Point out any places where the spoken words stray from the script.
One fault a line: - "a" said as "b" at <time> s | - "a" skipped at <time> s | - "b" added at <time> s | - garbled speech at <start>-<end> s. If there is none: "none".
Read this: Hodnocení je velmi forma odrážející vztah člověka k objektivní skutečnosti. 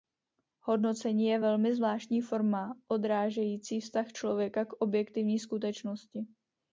- "zvláštní" added at 1.8 s